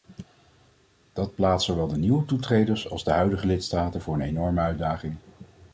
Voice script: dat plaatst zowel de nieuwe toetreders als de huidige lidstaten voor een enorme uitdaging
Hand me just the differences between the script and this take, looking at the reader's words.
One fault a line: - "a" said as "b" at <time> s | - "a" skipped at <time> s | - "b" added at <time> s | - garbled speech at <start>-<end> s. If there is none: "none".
none